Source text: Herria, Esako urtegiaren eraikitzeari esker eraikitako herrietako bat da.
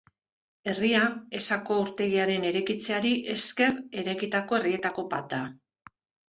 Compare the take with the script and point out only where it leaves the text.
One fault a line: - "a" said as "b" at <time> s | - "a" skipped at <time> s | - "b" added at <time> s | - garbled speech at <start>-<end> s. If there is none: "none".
none